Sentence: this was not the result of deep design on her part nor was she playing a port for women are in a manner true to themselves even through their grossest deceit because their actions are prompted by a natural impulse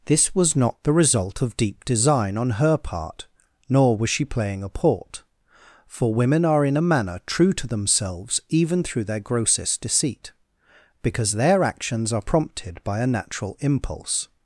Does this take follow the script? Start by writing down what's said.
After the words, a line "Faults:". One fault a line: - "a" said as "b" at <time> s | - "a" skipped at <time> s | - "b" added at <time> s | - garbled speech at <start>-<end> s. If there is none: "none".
this was not the result of deep design on her part nor was she playing a port for women are in a manner true to themselves even through their grossest deceit because their actions are prompted by a natural impulse
Faults:
none